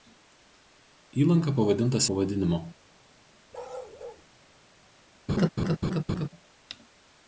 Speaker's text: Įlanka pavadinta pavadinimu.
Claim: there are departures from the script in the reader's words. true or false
false